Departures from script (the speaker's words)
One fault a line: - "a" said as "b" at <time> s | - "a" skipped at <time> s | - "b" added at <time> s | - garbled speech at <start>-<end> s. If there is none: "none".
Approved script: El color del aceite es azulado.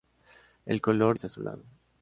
- "del aceite" skipped at 1.1 s